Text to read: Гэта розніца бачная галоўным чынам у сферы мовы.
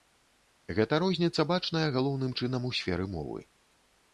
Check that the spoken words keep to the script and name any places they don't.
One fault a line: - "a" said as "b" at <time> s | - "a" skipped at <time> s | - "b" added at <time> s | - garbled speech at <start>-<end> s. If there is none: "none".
none